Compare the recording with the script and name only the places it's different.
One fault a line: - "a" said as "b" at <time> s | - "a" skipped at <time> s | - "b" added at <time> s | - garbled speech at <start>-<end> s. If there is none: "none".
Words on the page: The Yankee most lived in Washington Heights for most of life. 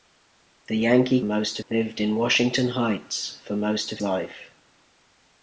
none